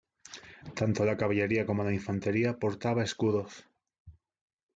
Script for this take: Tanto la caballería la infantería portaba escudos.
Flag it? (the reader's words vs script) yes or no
yes